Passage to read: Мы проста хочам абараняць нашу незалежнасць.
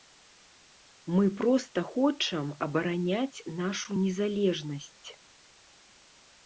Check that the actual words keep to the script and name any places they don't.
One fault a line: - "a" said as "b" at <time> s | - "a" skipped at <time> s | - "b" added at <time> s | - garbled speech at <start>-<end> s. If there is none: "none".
none